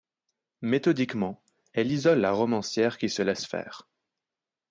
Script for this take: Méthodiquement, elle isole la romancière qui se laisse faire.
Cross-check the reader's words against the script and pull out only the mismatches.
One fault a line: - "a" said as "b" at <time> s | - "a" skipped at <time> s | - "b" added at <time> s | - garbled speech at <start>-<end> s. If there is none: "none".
none